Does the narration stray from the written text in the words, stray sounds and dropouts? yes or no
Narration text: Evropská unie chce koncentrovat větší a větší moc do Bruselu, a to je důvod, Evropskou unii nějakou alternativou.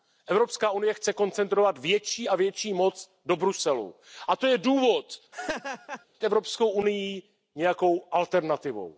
yes